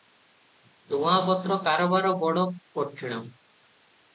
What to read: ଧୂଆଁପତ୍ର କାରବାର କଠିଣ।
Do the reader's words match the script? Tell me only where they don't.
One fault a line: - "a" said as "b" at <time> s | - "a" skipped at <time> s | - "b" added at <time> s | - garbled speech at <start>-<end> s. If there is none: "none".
- "ବଡ" added at 2.2 s